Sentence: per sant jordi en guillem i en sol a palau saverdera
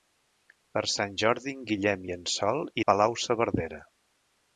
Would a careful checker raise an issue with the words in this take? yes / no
no